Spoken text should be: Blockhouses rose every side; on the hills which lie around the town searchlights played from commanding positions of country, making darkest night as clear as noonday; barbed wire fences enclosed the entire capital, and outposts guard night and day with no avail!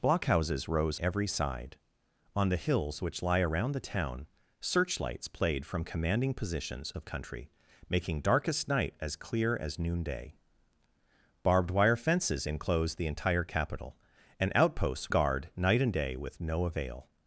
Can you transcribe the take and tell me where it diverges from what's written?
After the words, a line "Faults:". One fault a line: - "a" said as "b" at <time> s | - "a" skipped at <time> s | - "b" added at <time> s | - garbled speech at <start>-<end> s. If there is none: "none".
Blockhouses rose every side; on the hills which lie around the town searchlights played from commanding positions of country, making darkest night as clear as noonday; barbed wire fences enclosed the entire capital, and outposts guard night and day with no avail!
Faults:
none